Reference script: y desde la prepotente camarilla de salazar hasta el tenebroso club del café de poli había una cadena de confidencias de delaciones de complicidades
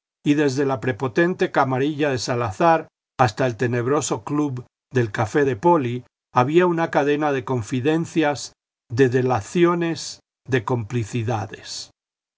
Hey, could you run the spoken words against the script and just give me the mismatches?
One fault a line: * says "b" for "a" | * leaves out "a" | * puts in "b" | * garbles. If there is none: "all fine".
all fine